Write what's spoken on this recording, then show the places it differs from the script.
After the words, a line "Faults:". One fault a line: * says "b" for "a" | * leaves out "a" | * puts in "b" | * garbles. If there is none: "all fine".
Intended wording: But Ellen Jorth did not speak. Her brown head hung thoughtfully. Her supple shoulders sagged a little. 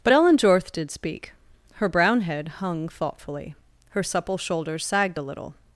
But Ellen Jorth did speak. Her brown head hung thoughtfully. Her supple shoulders sagged a little.
Faults:
* leaves out "not"